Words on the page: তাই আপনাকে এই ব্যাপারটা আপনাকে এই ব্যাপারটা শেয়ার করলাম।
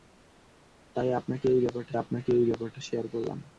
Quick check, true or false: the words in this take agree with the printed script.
true